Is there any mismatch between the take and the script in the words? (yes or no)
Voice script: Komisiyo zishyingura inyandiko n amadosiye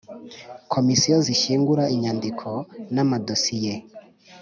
no